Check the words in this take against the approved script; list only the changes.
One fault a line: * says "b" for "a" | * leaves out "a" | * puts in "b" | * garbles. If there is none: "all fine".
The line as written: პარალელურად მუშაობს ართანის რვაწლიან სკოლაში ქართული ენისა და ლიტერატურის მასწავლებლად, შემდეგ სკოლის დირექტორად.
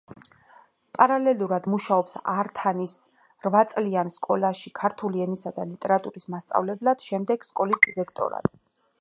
all fine